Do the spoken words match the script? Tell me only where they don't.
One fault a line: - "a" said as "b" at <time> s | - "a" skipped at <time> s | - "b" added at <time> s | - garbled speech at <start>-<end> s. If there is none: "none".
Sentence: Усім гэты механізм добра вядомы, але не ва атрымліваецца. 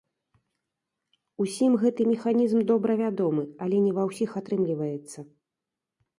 - "ўсіх" added at 4.1 s